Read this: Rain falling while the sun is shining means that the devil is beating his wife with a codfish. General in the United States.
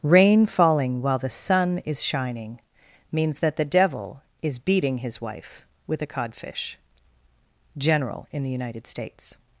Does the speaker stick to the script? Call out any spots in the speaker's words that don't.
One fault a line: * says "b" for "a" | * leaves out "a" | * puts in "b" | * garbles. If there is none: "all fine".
all fine